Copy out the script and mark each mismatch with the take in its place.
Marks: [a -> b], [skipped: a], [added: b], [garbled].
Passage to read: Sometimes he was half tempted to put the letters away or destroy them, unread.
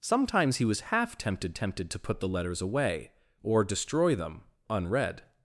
Sometimes he was half tempted [added: tempted] to put the letters away or destroy them, unread.